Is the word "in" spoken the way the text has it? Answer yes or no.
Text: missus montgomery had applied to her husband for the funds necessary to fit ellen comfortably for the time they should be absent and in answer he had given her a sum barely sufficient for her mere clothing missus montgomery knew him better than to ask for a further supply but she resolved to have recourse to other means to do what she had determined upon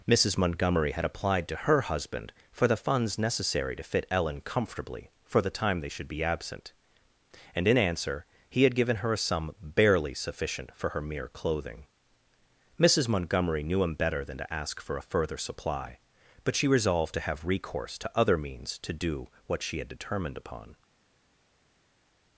yes